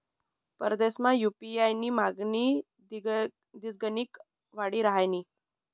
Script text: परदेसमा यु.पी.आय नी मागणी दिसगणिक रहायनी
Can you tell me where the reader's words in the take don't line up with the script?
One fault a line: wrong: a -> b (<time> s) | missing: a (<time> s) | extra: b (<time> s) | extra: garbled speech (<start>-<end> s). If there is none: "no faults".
extra: वाडी (4.5 s)